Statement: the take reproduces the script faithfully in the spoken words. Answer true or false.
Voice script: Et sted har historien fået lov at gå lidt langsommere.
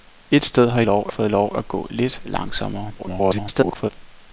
false